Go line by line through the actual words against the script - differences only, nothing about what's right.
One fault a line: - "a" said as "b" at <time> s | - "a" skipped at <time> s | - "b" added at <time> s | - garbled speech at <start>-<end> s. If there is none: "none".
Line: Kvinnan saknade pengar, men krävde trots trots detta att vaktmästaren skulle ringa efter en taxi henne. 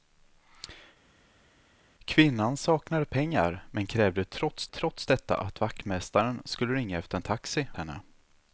none